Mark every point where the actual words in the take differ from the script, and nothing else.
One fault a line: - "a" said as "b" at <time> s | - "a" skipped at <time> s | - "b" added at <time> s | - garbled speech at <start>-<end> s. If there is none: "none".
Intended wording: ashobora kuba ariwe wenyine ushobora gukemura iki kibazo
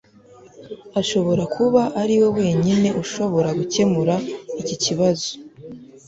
none